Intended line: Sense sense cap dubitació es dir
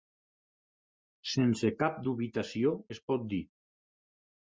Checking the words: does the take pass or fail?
fail